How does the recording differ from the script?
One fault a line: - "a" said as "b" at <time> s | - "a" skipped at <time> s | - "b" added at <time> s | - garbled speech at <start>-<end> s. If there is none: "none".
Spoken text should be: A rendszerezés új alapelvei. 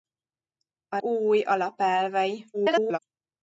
- "rendszerezés" skipped at 1.0 s
- garbled speech at 2.5-3.0 s